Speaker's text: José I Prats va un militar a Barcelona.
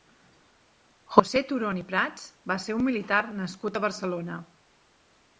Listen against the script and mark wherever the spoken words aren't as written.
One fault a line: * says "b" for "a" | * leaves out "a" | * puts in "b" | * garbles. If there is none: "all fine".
* puts in "Turón"
* puts in "ser"
* puts in "nascut"